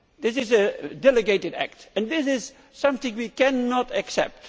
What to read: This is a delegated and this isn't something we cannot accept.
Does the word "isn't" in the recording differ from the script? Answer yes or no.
yes